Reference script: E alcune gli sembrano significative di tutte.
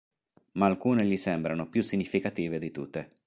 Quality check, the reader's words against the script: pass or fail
fail